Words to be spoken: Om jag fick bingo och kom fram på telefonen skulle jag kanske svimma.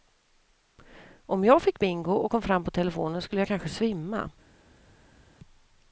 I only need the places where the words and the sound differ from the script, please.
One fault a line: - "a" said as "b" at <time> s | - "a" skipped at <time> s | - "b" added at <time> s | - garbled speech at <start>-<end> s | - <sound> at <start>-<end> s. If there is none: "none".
none